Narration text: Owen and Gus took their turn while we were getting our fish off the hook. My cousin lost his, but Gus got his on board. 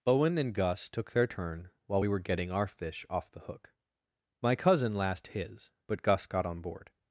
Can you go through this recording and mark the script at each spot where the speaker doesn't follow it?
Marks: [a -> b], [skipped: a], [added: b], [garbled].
Owen and Gus took their turn while we were getting our fish off the hook. My cousin [lost -> last] his, but Gus got [skipped: his] on board.